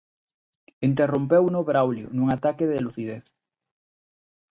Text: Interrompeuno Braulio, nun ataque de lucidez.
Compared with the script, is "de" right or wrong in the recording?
right